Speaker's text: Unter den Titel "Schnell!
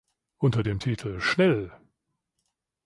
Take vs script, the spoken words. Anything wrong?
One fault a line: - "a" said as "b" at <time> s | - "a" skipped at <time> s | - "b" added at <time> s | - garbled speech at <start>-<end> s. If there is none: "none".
- "den" said as "dem" at 0.6 s